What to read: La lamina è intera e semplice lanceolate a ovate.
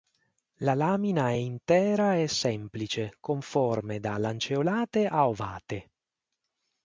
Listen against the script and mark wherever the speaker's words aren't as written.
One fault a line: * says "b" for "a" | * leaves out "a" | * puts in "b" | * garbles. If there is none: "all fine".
* puts in "con forme da"